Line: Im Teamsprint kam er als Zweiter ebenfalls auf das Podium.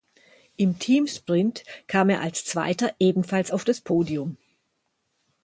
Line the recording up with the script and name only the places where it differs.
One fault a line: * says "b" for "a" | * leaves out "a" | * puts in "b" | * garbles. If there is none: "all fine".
all fine